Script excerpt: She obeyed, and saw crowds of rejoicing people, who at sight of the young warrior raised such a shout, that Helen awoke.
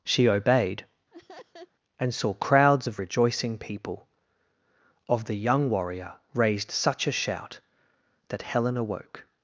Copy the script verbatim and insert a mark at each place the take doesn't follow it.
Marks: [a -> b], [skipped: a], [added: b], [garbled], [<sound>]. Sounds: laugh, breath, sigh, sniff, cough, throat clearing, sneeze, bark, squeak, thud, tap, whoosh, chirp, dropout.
She obeyed, [laugh] and saw crowds of rejoicing people, [skipped: who at sight] of the young warrior raised such a shout, that Helen awoke.